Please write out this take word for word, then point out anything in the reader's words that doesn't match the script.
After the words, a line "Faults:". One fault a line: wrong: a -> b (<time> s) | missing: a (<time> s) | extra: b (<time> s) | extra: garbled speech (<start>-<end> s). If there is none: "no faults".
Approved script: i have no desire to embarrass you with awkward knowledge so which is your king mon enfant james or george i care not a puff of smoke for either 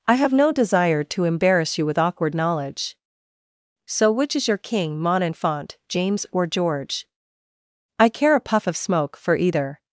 i have no desire to embarrass you with awkward knowledge so which is your king mon enfant james or george i care a puff of smoke for either
Faults:
missing: not (8.3 s)